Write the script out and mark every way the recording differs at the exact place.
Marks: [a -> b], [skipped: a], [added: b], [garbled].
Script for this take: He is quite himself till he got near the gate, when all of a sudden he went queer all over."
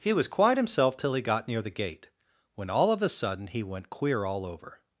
He [is -> was] quite himself till he got near the gate, when all of a sudden he went queer all over."